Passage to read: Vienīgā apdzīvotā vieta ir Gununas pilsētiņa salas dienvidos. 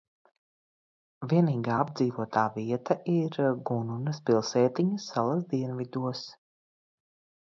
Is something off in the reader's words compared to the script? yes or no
no